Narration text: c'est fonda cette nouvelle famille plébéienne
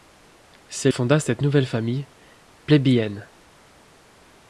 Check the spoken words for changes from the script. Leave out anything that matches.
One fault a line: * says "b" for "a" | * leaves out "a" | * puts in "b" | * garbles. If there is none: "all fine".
all fine